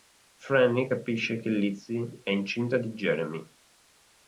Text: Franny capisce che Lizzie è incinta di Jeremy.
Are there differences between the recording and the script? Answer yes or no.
no